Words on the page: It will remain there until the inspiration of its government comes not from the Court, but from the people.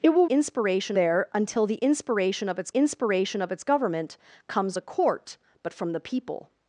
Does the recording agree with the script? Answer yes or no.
no